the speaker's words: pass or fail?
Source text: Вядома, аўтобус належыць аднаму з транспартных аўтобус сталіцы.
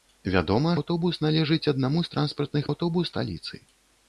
pass